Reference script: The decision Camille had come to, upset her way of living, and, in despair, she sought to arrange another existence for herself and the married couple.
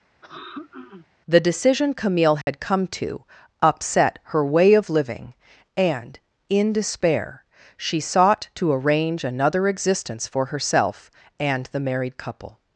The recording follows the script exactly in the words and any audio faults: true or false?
false